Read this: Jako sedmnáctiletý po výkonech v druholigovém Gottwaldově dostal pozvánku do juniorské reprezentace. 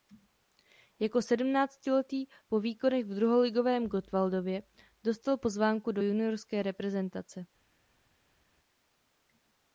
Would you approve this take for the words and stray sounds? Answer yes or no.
yes